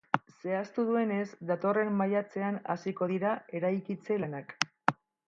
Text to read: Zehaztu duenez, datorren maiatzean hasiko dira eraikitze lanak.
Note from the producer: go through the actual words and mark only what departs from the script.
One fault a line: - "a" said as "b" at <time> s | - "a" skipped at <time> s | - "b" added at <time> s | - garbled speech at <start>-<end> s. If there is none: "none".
none